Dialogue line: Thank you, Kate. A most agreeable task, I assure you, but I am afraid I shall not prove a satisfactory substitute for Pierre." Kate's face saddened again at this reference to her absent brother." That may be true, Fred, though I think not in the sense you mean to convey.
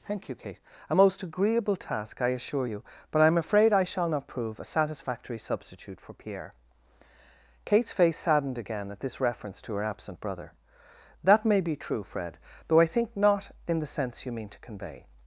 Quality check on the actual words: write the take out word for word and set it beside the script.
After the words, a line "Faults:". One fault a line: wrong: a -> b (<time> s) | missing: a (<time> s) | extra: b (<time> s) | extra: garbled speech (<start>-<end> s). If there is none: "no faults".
Thank you, Kate. A most agreeable task, I assure you, but I am afraid I shall not prove a satisfactory substitute for Pierre." Kate's face saddened again at this reference to her absent brother." That may be true, Fred, though I think not in the sense you mean to convey.
Faults:
no faults